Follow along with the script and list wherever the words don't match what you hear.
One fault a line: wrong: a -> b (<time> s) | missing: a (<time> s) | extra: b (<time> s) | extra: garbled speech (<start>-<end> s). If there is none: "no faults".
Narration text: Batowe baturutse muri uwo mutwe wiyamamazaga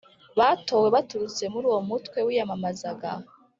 no faults